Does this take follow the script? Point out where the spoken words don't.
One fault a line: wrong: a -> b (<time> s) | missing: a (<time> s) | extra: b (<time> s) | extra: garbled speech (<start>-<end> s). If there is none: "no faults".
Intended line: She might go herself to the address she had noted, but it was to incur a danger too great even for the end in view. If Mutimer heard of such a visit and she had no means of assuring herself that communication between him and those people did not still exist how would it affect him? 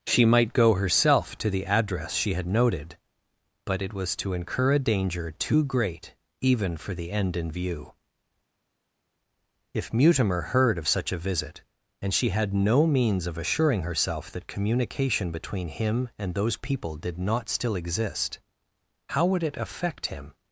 no faults